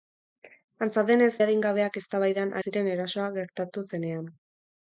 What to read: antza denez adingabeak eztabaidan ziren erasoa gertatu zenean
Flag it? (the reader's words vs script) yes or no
no